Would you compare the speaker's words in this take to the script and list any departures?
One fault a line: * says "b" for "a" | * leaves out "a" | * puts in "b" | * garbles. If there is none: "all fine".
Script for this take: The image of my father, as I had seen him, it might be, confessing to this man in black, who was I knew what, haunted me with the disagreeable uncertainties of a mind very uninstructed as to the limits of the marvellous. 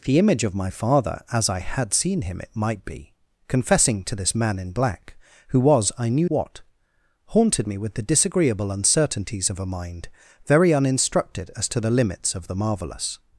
all fine